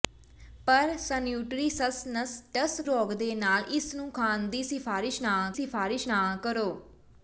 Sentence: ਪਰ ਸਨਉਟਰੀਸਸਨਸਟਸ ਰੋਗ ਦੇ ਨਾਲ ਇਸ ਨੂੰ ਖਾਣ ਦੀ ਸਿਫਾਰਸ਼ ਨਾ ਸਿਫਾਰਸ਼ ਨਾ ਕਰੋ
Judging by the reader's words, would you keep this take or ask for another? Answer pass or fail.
pass